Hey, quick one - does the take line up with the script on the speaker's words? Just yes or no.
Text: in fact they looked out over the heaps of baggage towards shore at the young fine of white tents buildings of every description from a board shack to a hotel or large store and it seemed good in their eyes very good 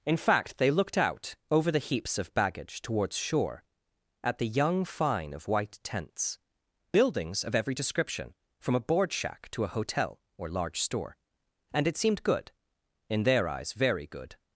yes